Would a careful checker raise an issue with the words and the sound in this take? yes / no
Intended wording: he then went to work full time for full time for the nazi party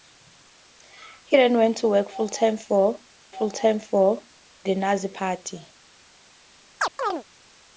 yes